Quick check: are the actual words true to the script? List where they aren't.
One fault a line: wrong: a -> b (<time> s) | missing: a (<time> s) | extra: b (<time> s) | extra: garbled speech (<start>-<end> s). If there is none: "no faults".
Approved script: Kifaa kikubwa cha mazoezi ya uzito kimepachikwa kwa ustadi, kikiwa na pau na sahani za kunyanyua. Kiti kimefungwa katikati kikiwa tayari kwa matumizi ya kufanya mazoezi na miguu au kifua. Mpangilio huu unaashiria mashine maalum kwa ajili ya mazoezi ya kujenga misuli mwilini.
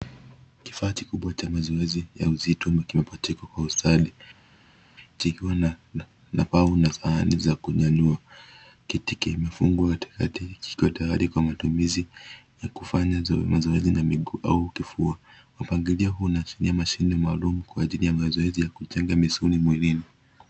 no faults